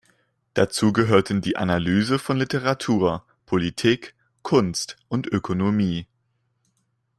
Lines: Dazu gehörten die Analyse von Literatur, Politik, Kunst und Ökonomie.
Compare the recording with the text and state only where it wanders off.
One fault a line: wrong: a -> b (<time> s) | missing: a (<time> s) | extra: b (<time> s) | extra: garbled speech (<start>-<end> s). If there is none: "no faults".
no faults